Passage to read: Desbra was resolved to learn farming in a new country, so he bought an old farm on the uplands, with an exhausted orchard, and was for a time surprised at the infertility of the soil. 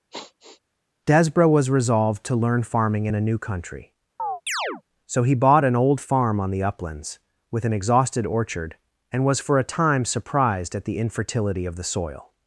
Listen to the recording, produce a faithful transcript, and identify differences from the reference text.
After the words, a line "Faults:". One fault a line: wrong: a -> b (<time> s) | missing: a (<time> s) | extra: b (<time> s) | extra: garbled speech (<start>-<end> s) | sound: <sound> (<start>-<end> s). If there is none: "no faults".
Desbra was resolved to learn farming in a new country, so he bought an old farm on the uplands, with an exhausted orchard, and was for a time surprised at the infertility of the soil.
Faults:
sound: sigh (0.1-0.6 s)
sound: chirp (4.2-4.8 s)